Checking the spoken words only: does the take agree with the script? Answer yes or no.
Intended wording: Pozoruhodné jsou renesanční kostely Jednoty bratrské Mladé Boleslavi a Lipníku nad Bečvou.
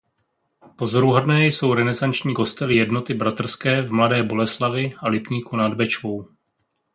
no